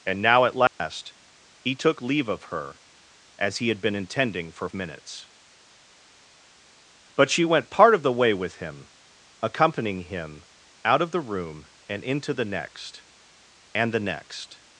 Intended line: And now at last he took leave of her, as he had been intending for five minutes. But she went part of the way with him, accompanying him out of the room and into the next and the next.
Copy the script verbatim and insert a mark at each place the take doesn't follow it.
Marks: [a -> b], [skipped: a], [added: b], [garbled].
And now at last he took leave of her, as he had been intending for [skipped: five] minutes. But she went part of the way with him, accompanying him out of the room and into the next and the next.